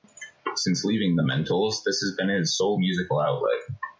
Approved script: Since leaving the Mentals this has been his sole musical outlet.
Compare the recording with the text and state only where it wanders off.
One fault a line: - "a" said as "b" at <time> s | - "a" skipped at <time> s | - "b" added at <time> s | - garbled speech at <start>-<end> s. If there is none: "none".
none